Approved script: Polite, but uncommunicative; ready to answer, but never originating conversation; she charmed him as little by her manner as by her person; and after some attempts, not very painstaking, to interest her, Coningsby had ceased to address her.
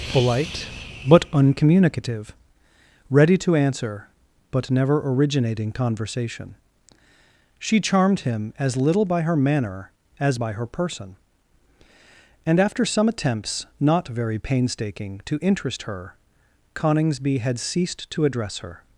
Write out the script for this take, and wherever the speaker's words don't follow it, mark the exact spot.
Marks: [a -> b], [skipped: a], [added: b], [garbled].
Polite, but uncommunicative; ready to answer, but never originating conversation; she charmed him as little by her manner as by her person; and after some attempts, not very painstaking, to interest her, Coningsby had ceased to address her.